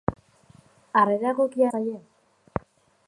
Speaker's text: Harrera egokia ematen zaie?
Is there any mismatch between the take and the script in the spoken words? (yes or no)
yes